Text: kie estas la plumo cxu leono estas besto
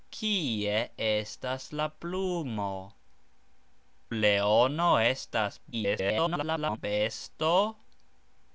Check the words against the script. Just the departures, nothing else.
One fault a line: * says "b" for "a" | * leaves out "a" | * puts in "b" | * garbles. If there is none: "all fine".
* leaves out "cxu"
* garbles